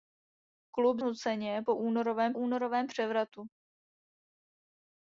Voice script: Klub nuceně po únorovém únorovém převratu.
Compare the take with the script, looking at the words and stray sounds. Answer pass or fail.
pass